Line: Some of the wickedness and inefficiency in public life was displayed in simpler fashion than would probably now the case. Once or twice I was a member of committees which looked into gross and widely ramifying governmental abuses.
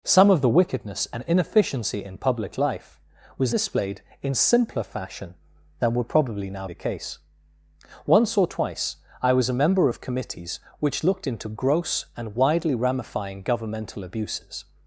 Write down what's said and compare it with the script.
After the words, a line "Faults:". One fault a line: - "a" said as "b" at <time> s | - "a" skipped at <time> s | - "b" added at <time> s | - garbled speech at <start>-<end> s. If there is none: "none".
Some of the wickedness and inefficiency in public life was displayed in simpler fashion than would probably now the case. Once or twice I was a member of committees which looked into gross and widely ramifying governmental abuses.
Faults:
none